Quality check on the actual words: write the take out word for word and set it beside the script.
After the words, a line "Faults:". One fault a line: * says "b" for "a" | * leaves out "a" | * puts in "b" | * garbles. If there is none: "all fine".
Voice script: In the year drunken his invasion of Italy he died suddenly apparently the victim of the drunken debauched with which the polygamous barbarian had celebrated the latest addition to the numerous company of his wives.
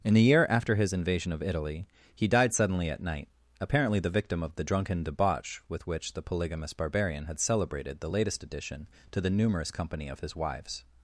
In the year after his invasion of Italy he died suddenly at night, apparently the victim of the drunken debauch with which the polygamous barbarian had celebrated the latest addition to the numerous company of his wives.
Faults:
* says "after" for "drunken"
* puts in "at night"
* says "debauch" for "debauched"